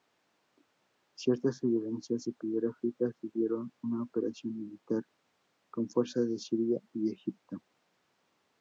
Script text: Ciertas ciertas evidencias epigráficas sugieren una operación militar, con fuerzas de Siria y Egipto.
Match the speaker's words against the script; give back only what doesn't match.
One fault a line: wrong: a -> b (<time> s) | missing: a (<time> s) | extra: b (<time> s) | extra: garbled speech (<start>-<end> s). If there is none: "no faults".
missing: ciertas (1.6 s)